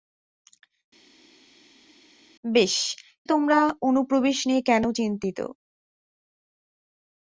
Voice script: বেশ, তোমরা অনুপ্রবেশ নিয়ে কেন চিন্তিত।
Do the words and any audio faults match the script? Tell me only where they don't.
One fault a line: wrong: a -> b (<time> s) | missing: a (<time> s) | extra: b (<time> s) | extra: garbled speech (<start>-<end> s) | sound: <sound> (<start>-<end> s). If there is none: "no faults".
no faults